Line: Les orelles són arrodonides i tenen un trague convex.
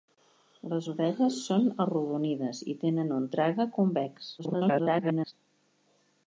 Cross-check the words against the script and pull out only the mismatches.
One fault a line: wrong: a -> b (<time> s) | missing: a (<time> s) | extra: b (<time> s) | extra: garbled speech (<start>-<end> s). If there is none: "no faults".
extra: garbled speech (4.4-5.3 s)